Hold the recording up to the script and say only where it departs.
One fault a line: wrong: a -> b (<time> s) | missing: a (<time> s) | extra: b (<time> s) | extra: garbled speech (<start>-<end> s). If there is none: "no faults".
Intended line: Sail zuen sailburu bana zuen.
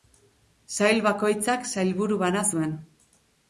wrong: zuen -> bakoitzak (1.1 s)